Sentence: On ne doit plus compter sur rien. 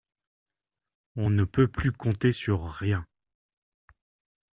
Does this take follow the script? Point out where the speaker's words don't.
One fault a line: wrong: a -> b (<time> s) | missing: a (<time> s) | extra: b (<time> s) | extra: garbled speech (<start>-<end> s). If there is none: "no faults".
wrong: doit -> peut (1.4 s)